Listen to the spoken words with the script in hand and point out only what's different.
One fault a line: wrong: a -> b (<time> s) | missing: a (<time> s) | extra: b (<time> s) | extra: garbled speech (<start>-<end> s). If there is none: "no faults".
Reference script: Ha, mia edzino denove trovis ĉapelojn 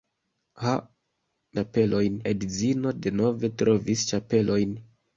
wrong: mia -> ĉapelojn (1.6 s)